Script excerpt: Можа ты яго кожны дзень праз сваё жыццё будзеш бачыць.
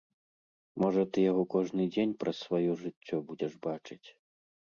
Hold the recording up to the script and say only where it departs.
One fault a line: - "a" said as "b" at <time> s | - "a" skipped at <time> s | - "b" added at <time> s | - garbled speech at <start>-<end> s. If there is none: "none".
none